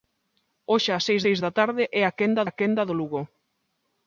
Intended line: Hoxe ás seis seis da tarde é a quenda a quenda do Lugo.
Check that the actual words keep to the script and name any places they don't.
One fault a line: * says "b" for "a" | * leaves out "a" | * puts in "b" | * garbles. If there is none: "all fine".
all fine